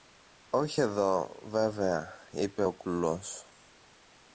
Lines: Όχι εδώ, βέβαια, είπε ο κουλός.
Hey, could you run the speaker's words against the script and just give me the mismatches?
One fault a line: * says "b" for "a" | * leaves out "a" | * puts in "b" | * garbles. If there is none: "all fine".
all fine